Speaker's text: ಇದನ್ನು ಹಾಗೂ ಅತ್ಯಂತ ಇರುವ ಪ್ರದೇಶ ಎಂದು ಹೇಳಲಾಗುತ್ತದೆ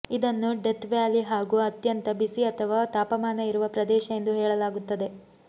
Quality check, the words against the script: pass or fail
fail